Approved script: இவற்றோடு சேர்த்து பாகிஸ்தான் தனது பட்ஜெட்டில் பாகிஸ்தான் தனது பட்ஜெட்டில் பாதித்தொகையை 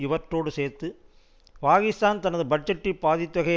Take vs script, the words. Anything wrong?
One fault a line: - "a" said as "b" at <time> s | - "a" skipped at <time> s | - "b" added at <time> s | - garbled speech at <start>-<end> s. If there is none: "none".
- "பாகிஸ்தான் தனது பட்ஜெட்டில்" skipped at 3.0 s